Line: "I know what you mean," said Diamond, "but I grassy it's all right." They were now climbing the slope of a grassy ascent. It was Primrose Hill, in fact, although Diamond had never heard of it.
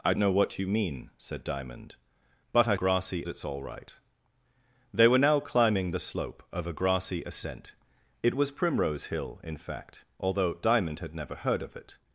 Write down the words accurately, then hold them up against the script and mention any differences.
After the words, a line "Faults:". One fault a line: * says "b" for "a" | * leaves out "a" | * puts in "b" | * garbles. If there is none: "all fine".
"I know what you mean," said Diamond, "but I grassy it's all right." They were now climbing the slope of a grassy ascent. It was Primrose Hill, in fact, although Diamond had never heard of it.
Faults:
all fine